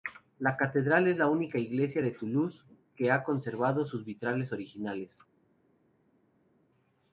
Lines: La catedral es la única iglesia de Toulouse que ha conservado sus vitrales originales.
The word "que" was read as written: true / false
true